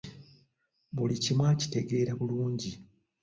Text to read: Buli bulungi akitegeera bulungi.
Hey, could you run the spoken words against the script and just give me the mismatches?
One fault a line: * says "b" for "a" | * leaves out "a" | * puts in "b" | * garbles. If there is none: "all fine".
* says "kimu" for "bulungi"